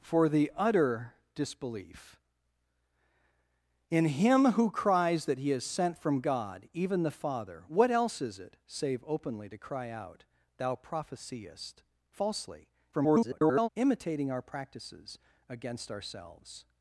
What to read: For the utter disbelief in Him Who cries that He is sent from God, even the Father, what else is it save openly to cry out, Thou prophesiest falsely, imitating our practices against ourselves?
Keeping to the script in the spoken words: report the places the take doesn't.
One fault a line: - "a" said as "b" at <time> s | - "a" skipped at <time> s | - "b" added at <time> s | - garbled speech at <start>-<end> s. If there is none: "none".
- garbled speech at 12.9-13.7 s